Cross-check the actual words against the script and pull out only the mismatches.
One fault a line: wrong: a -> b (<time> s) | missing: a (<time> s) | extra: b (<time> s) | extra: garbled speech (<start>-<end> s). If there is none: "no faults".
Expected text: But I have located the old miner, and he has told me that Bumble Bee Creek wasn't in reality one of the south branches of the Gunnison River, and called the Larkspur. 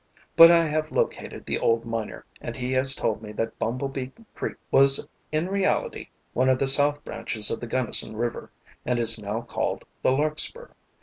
wrong: wasn't -> was (4.7 s)
extra: is now (9.0 s)